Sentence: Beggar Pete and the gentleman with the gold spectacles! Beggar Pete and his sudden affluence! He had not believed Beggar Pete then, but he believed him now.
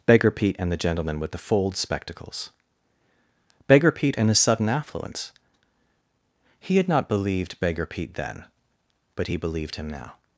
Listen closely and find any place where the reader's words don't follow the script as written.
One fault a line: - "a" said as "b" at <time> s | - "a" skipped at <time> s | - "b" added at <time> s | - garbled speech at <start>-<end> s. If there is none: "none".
- "gold" said as "fold" at 1.4 s